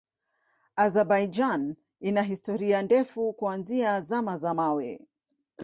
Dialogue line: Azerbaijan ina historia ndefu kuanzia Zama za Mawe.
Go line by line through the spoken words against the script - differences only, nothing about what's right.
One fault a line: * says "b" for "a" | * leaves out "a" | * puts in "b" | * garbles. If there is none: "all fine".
all fine